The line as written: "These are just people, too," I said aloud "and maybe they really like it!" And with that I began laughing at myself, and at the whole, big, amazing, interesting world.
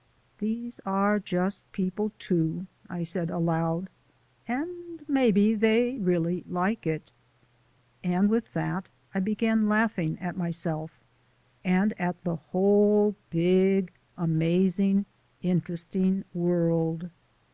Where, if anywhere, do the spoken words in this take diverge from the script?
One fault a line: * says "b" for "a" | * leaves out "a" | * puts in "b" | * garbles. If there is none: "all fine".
all fine